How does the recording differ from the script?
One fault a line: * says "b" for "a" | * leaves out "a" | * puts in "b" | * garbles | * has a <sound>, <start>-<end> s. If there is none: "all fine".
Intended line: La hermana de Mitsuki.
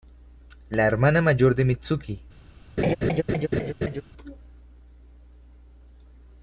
* puts in "mayor"
* has a laugh, 2.8-4.0 s